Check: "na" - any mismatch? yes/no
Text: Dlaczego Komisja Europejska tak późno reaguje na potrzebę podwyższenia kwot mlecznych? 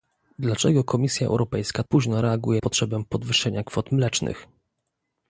yes